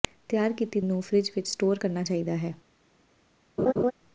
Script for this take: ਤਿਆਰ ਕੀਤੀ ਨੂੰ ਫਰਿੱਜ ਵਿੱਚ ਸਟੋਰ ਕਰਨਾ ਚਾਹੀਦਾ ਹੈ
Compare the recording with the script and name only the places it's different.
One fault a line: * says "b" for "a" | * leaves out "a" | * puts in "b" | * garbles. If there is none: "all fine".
all fine